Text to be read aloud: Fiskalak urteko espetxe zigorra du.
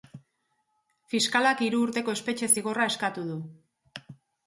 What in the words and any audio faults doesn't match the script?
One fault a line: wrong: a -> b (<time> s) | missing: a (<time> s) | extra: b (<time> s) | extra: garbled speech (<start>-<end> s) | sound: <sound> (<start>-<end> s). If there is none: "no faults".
extra: hiru (1.7 s)
extra: eskatu (3.0 s)